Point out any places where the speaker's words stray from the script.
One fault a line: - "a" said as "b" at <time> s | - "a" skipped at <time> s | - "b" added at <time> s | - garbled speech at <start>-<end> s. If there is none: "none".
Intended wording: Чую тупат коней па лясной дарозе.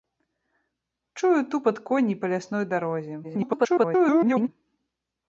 - garbled speech at 3.2-4.5 s